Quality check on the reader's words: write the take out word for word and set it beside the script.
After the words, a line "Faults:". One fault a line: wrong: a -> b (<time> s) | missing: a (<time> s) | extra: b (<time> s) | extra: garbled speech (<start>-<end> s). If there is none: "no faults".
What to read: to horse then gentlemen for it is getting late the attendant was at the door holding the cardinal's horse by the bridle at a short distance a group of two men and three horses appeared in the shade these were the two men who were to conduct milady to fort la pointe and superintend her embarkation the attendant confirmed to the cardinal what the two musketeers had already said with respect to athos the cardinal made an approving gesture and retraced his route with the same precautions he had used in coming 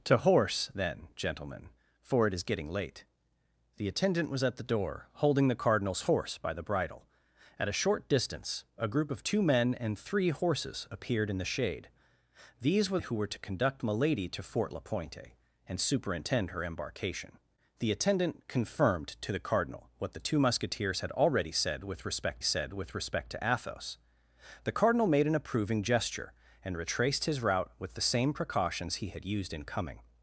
to horse then gentlemen for it is getting late the attendant was at the door holding the cardinal's horse by the bridle at a short distance a group of two men and three horses appeared in the shade these were who were to conduct milady to fort la pointe and superintend her embarkation the attendant confirmed to the cardinal what the two musketeers had already said with respect said with respect to athos the cardinal made an approving gesture and retraced his route with the same precautions he had used in coming
Faults:
missing: the two men (13.0 s)
extra: said with respect (22.4 s)